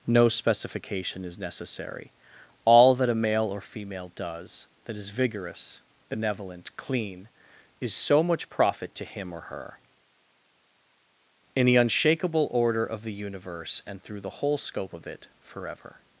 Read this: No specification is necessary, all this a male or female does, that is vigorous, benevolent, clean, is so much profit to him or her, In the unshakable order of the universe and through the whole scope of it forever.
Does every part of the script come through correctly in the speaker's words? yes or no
no